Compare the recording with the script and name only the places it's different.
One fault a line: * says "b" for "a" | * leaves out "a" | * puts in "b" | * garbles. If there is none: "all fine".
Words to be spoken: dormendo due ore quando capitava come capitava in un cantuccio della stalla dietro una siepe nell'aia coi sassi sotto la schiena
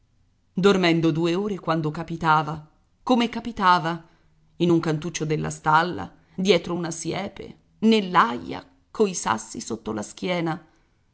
all fine